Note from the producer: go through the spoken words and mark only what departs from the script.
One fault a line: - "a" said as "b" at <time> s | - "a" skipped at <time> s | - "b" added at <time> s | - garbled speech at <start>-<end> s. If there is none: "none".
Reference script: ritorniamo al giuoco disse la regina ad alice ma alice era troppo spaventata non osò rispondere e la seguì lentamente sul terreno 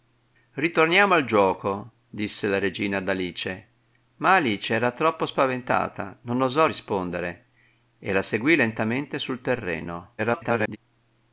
- garbled speech at 10.2-10.8 s